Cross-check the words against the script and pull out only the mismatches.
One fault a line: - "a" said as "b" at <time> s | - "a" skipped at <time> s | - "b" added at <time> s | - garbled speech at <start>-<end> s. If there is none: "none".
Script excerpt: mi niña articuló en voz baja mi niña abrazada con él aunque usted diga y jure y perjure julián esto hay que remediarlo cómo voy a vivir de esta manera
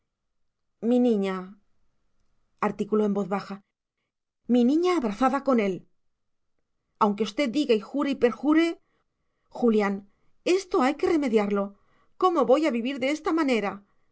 none